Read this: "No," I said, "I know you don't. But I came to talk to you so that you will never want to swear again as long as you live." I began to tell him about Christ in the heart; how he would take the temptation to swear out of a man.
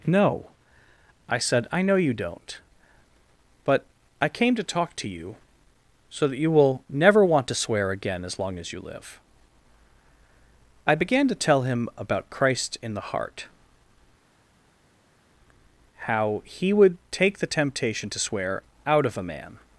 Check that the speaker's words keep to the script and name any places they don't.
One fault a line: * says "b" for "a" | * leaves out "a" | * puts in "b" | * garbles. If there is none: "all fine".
all fine